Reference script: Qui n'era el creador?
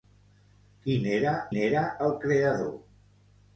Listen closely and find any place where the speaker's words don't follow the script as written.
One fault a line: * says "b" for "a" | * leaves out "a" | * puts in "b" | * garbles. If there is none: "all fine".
* puts in "n'era"